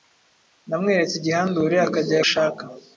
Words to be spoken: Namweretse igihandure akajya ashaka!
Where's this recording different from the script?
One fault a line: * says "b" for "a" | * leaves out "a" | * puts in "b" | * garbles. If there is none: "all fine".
all fine